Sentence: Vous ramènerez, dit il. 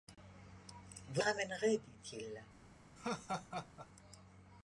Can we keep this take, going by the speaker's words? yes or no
yes